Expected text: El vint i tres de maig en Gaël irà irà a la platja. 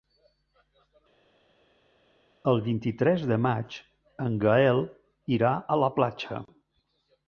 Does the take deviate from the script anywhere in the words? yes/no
yes